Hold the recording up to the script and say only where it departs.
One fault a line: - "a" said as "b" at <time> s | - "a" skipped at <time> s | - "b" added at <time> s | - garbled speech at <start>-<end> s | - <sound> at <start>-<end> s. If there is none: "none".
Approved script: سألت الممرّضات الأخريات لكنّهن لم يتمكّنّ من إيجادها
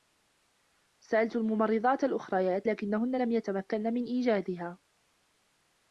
none